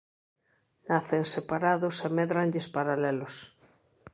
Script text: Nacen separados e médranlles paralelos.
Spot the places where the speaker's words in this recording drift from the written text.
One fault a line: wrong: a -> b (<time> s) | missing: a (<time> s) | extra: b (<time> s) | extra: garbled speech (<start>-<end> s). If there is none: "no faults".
no faults